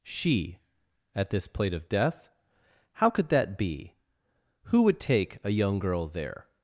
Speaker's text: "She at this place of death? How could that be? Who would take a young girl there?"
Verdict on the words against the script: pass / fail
fail